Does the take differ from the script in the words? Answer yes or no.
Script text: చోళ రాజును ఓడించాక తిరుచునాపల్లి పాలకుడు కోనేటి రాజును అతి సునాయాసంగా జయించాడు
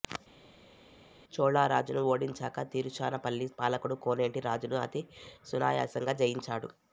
no